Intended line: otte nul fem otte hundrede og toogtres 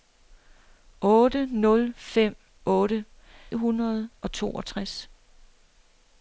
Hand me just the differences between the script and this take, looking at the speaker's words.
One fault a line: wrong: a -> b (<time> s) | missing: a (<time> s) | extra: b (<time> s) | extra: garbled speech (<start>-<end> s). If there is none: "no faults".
no faults